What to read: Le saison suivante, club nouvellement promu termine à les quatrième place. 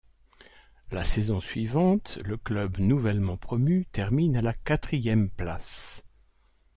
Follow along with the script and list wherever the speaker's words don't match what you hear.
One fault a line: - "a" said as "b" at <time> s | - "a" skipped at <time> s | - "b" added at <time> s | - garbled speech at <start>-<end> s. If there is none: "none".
- "Le" said as "La" at 0.9 s
- "le" added at 2.2 s
- "les" said as "la" at 4.4 s